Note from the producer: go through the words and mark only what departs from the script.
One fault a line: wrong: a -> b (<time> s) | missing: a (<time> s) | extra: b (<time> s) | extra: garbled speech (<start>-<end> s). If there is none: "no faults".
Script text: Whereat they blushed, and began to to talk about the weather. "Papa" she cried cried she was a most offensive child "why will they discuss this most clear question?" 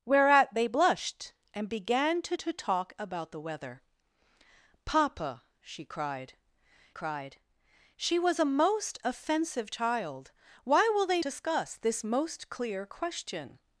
no faults